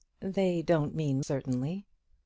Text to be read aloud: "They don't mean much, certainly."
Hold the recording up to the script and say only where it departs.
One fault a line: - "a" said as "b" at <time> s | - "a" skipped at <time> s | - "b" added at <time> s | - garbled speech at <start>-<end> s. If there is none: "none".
- "much" skipped at 1.2 s